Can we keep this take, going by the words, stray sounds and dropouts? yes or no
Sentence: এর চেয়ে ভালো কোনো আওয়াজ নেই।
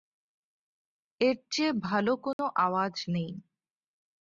no